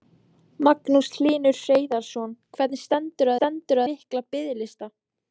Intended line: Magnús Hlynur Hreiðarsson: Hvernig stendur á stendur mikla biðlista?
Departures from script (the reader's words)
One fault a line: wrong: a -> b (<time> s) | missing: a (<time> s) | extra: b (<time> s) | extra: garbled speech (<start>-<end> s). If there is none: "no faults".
no faults